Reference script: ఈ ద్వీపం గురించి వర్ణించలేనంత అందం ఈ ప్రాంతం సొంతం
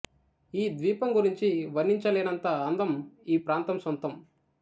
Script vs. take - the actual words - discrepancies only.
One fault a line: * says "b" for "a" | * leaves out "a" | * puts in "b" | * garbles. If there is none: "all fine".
all fine